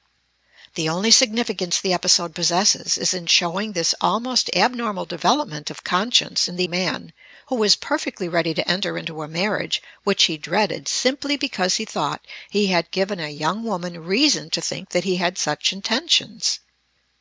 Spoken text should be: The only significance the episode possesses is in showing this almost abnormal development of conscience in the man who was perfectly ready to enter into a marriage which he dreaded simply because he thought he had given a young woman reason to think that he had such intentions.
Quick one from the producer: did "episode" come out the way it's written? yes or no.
yes